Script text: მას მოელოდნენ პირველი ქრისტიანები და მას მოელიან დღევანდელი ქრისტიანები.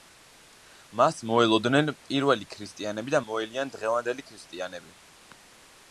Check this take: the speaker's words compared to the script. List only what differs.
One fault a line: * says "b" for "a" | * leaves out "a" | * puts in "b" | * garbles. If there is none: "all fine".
* leaves out "მას"